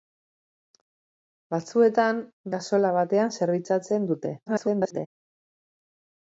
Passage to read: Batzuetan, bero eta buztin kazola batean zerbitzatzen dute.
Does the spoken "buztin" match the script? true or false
false